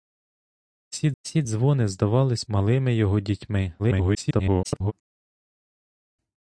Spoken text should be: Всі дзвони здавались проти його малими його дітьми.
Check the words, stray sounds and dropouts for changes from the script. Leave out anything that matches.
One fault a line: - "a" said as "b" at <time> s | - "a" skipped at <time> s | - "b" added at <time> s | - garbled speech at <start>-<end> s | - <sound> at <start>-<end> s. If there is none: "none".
- "всі" added at 1.2 s
- "проти його" skipped at 2.4 s
- garbled speech at 3.8-4.9 s